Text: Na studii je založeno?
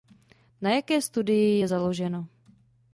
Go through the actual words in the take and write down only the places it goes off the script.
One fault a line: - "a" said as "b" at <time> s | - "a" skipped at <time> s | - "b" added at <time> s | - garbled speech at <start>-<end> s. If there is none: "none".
- "jaké" added at 0.7 s